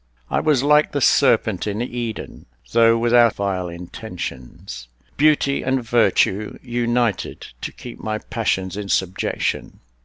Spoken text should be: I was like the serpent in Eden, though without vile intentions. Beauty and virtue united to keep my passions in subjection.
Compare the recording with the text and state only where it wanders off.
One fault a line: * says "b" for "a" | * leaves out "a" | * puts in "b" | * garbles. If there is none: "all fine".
all fine